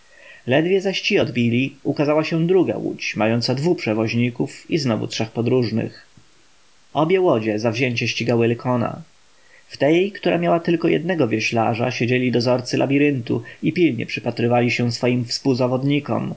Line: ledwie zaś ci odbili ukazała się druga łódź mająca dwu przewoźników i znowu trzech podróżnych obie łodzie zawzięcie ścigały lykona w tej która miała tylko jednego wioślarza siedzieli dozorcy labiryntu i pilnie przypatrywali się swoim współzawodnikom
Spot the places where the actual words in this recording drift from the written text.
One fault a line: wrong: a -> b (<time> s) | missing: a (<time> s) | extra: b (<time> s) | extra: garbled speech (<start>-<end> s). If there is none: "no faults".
no faults